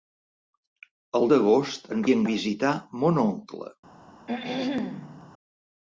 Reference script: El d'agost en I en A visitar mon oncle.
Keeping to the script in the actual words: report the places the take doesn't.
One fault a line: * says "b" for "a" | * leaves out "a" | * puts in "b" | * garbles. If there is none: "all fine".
all fine